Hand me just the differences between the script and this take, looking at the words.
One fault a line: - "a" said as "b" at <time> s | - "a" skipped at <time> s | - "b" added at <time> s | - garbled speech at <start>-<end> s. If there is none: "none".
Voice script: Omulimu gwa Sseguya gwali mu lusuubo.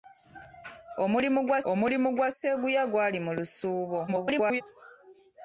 - "omulimu gwa" added at 1.7 s
- garbled speech at 4.1-4.6 s